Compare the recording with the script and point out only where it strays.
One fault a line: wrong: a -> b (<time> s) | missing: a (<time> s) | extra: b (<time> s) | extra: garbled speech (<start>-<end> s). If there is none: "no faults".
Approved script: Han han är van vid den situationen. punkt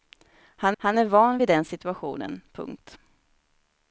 no faults